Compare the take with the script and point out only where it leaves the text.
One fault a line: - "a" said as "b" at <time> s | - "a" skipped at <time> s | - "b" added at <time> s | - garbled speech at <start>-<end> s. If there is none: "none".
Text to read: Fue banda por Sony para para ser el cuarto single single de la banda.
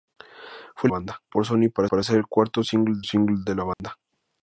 none